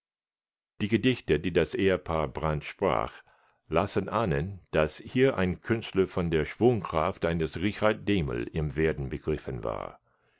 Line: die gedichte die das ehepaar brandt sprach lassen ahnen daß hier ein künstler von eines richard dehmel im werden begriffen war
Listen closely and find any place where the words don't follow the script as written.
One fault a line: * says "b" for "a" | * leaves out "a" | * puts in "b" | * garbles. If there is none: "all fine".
* puts in "der schwungkraft"